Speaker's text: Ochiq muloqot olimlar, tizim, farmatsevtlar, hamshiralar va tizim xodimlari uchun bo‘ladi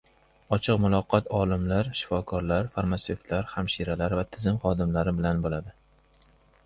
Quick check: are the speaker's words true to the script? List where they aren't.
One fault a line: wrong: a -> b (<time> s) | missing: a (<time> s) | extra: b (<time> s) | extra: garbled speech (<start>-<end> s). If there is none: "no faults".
wrong: tizim -> shifokorlar (2.0 s)
wrong: uchun -> bilan (5.2 s)